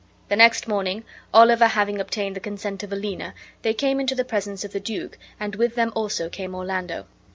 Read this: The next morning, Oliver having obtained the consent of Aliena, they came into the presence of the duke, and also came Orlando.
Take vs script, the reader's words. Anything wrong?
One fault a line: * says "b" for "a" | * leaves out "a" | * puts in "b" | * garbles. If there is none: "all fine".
* puts in "with them"